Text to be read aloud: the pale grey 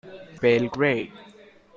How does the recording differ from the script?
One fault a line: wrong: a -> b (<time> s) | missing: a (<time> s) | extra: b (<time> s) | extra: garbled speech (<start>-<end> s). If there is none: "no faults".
no faults